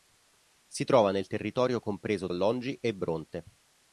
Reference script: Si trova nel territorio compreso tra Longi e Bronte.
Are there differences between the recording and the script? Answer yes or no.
yes